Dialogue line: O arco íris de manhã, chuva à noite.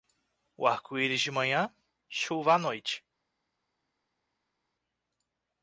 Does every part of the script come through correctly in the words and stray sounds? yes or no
yes